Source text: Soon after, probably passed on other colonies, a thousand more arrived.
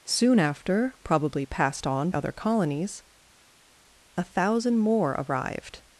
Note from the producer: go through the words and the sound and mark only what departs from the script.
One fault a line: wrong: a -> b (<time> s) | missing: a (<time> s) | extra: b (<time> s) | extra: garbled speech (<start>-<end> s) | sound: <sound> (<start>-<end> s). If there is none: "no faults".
no faults